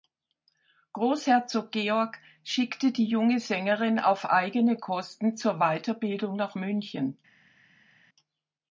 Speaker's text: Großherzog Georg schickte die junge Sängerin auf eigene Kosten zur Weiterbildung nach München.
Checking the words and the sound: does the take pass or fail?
pass